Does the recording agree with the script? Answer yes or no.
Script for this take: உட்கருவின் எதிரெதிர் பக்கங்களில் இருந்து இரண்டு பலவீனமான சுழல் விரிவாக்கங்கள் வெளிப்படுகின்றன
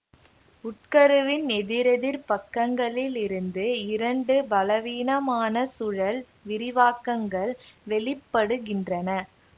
yes